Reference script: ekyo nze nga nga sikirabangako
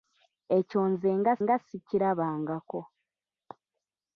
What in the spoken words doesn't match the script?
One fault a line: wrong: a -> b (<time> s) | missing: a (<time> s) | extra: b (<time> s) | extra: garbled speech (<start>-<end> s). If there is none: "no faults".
no faults